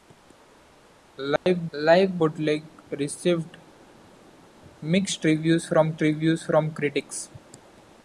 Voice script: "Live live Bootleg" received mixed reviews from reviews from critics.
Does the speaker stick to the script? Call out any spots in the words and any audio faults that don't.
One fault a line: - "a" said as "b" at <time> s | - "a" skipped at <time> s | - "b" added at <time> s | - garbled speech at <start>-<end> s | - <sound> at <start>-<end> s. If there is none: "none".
- dropout at 1.4-1.5 s